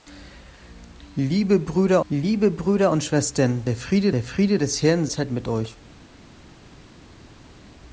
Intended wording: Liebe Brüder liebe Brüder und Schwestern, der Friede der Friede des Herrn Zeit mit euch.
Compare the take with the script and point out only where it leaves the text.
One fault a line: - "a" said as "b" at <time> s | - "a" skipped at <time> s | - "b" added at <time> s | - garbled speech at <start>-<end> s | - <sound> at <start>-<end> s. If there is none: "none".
none